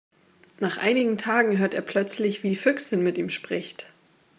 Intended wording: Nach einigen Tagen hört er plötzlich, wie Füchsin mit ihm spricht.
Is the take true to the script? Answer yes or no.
no